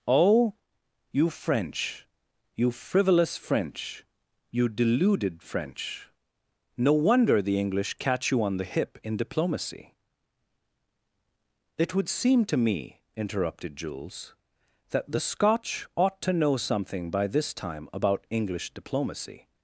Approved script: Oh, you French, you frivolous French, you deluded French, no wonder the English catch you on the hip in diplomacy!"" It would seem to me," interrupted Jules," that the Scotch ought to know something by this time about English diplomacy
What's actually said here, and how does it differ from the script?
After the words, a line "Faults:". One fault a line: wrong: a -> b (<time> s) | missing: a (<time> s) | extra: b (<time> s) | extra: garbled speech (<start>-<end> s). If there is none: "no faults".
Oh, you French, you frivolous French, you deluded French, no wonder the English catch you on the hip in diplomacy!"" It would seem to me," interrupted Jules," that the Scotch ought to know something by this time about English diplomacy
Faults:
no faults